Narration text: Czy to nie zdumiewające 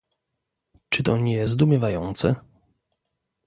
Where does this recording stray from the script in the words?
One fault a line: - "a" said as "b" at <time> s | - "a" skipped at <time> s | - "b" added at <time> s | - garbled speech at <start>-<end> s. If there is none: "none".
none